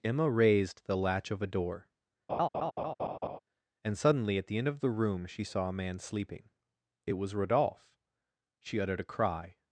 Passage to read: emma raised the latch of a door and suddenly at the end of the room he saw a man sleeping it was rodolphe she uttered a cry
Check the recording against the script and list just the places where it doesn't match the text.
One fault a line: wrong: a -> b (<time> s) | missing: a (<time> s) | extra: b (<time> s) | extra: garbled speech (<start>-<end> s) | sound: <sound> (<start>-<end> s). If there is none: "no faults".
sound: laugh (2.3-3.4 s)
wrong: he -> she (5.2 s)